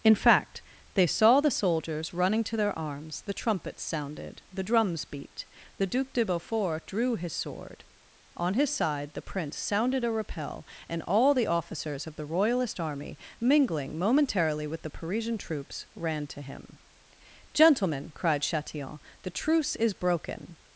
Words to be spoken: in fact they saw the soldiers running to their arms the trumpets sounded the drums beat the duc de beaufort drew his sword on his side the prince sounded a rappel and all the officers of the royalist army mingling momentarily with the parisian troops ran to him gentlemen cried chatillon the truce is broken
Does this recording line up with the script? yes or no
yes